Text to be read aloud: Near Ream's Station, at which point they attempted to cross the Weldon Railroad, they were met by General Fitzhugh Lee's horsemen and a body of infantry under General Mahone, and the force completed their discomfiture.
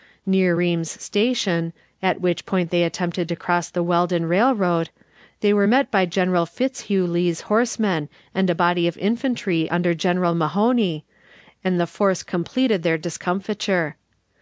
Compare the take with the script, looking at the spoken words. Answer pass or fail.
pass